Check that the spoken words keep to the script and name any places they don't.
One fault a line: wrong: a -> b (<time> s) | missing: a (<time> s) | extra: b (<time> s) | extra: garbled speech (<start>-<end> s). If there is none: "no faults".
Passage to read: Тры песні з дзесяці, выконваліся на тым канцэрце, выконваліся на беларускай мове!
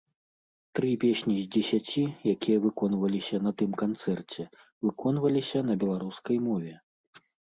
extra: якія (2.3 s)